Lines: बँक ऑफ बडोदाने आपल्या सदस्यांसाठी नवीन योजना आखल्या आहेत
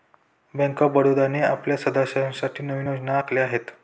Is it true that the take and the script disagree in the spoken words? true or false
false